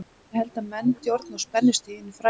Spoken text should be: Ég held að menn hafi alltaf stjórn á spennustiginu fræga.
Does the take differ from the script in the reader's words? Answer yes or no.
yes